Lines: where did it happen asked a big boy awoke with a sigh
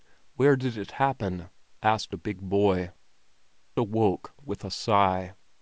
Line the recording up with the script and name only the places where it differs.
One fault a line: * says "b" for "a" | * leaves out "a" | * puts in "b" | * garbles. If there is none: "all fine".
all fine